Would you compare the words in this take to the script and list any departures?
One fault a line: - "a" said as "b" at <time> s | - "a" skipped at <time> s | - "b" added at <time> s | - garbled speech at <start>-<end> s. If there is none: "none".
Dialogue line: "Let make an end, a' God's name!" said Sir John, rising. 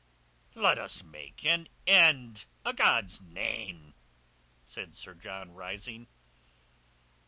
- "us" added at 0.8 s